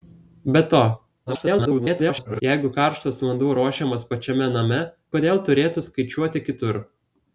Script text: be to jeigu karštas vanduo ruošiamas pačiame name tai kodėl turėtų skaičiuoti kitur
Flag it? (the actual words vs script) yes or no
yes